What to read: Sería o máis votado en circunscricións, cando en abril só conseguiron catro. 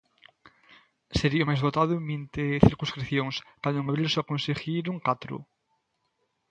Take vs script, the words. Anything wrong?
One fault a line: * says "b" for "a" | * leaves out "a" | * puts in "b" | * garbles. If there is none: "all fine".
* puts in "vinte"